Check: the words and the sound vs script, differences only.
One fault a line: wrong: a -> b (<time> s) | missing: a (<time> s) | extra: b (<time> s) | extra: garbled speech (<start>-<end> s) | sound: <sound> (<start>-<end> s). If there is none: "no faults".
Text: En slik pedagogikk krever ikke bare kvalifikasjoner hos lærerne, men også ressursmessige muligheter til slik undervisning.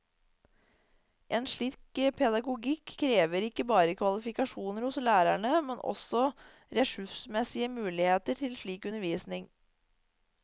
no faults